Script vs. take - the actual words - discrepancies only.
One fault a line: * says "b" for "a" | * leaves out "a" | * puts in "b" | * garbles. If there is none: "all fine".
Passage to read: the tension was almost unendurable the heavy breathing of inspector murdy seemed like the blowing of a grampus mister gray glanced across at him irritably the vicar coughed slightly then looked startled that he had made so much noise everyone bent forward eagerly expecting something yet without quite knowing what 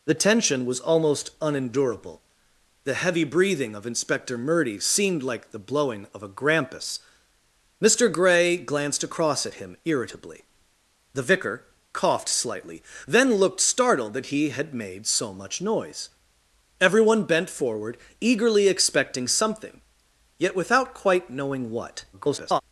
* garbles